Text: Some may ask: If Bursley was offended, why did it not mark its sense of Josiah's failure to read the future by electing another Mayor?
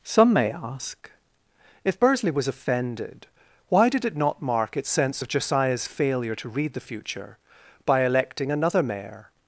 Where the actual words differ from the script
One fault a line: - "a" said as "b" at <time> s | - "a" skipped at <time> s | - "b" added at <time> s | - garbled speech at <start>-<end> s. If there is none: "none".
none